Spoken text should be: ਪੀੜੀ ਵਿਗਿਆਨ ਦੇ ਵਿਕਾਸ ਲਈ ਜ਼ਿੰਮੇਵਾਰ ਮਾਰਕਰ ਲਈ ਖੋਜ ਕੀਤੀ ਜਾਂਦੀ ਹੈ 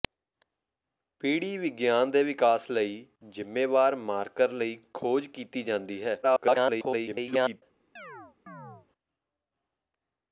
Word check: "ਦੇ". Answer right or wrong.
right